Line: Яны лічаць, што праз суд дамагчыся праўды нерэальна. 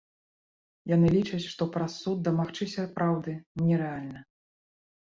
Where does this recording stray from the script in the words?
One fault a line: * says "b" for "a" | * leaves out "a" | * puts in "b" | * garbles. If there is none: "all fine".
all fine